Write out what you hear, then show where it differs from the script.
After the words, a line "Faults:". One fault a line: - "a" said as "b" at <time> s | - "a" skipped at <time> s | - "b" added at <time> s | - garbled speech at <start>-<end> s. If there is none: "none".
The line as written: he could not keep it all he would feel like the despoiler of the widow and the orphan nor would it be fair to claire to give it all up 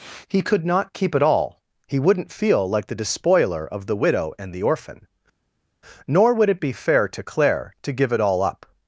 he could not keep it all he wouldn't feel like the despoiler of the widow and the orphan nor would it be fair to claire to give it all up
Faults:
- "would" said as "wouldn't" at 2.0 s